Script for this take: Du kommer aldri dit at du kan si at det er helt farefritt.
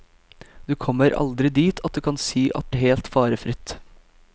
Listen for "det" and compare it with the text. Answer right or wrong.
wrong